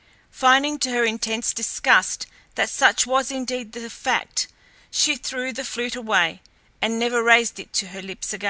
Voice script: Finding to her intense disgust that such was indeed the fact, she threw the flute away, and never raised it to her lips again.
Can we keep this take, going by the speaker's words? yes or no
yes